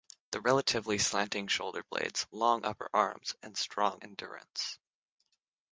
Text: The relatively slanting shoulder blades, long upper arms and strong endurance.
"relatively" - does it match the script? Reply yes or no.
yes